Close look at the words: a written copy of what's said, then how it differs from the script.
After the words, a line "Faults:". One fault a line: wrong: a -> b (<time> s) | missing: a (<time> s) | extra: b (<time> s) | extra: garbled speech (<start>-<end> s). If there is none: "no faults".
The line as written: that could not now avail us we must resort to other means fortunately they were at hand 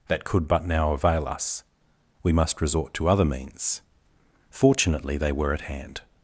that could but now avail us we must resort to other means fortunately they were at hand
Faults:
wrong: not -> but (0.5 s)